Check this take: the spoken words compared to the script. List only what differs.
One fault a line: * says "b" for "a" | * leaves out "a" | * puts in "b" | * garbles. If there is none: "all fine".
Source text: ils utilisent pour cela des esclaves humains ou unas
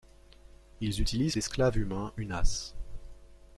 * leaves out "pour cela des"
* leaves out "ou"